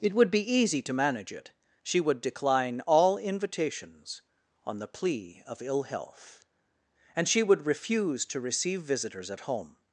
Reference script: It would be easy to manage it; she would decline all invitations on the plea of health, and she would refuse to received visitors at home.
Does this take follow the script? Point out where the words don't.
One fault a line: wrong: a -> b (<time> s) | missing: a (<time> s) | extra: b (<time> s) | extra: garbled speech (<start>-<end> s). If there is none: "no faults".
extra: ill (5.6 s)
wrong: received -> receive (8.4 s)